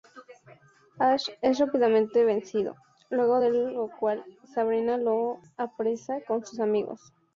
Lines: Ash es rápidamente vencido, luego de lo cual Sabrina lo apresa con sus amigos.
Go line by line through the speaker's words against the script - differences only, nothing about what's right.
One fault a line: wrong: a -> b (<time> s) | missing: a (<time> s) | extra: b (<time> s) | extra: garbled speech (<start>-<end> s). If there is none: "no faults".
no faults